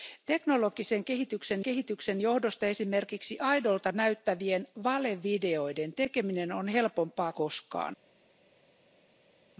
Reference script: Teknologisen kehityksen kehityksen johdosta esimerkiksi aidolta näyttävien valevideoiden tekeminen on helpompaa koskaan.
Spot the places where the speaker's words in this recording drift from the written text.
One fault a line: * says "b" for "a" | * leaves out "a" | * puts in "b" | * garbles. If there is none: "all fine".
all fine